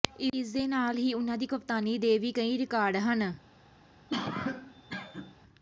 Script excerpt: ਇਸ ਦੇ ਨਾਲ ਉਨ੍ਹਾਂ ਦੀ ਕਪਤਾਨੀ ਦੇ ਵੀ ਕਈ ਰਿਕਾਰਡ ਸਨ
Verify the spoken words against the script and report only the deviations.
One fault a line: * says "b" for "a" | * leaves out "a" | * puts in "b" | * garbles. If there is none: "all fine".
* puts in "ਹੀ"
* says "ਹਨ" for "ਸਨ"